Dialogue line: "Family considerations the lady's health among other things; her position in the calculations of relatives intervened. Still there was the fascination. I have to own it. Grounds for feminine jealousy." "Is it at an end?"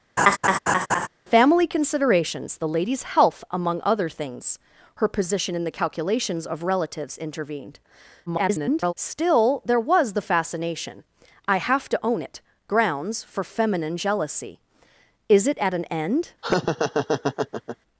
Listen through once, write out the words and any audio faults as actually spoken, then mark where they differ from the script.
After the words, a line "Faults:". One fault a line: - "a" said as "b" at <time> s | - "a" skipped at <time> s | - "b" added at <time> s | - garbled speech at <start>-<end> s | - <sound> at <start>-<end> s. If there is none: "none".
"Family considerations the lady's health among other things; her position in the calculations of relatives intervened. [garbled] Still there was the fascination. I have to own it. Grounds for feminine jealousy." "Is it at an end?"
Faults:
- laugh at 0.2-1.1 s
- garbled speech at 8.3-8.9 s
- laugh at 16.4-17.8 s